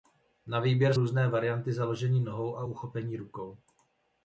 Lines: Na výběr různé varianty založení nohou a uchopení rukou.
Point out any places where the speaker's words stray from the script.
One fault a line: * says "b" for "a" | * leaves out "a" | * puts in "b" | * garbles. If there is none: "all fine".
all fine